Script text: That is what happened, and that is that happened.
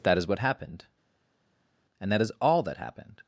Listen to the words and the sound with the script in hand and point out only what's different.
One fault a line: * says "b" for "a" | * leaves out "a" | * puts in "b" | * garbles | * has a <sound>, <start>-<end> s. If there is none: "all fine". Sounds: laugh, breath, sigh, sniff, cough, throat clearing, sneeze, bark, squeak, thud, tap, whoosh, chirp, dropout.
* puts in "all"